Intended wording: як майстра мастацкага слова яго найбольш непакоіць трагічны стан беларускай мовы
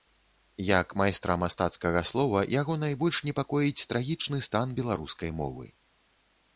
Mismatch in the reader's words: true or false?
false